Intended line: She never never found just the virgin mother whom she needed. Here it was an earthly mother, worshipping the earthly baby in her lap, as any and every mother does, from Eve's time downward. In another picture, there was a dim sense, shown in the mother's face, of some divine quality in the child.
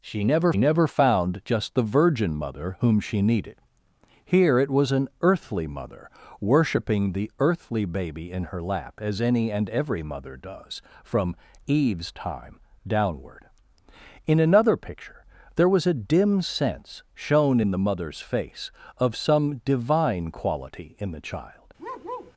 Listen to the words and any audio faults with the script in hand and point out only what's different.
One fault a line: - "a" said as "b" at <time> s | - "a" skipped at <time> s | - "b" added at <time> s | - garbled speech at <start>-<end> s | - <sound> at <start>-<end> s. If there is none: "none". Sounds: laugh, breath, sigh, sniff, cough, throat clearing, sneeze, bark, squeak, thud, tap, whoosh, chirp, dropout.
- bark at 21.8-22.3 s